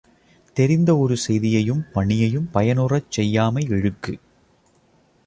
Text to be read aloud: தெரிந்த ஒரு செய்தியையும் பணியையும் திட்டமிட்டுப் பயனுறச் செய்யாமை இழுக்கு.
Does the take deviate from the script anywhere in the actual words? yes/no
yes